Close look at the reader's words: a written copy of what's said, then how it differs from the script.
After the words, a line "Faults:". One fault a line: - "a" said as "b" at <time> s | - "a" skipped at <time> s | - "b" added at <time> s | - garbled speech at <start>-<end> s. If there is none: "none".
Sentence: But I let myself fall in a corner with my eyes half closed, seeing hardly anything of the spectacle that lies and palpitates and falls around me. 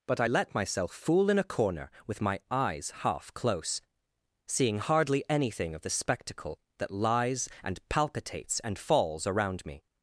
But I let myself fool in a corner with my eyes half close, seeing hardly anything of the spectacle that lies and palpitates and falls around me.
Faults:
- "fall" said as "fool" at 0.9 s
- "closed" said as "close" at 3.3 s